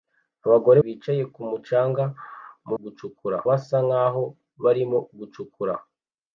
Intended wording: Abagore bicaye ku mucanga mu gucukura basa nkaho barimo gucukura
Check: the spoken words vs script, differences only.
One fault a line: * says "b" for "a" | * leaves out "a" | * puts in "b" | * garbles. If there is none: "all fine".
all fine